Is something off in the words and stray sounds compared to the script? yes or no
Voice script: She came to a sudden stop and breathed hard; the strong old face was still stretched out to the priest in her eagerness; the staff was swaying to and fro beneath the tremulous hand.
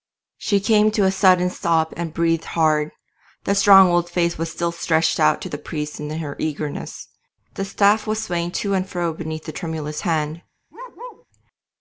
yes